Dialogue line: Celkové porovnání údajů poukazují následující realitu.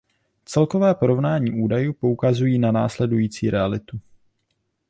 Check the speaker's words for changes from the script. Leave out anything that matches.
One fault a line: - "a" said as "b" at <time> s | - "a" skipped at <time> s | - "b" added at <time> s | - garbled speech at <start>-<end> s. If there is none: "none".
- "na" added at 2.6 s